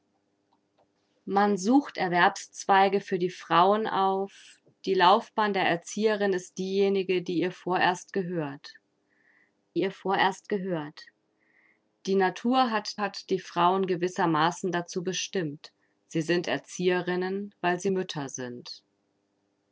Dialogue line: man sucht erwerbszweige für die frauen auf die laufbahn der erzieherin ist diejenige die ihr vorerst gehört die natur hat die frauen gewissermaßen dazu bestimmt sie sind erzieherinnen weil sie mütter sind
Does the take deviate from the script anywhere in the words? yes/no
yes